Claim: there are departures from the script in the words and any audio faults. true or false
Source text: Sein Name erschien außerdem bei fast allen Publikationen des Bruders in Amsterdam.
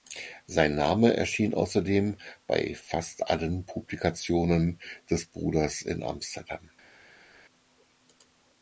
false